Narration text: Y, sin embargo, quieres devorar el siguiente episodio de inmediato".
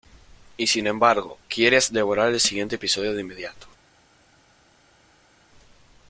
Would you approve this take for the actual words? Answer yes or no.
yes